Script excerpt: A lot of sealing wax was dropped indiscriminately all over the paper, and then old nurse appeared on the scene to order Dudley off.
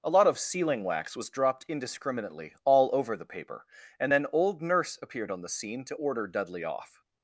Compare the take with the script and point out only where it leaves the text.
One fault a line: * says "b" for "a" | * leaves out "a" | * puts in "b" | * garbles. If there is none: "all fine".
all fine